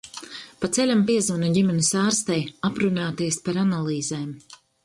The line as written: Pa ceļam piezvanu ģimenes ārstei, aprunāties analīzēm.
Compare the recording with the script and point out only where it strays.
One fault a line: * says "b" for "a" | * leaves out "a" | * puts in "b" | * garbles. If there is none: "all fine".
* puts in "par"